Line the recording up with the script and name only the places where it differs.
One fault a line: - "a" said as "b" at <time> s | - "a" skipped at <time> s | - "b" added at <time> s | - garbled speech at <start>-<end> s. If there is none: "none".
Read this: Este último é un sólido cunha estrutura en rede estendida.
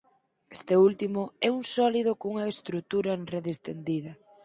none